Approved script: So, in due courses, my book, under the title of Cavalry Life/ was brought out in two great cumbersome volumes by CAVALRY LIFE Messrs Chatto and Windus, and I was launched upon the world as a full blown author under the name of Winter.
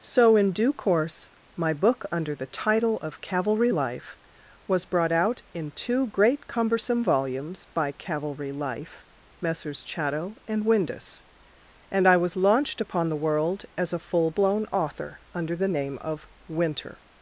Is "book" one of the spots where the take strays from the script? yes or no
no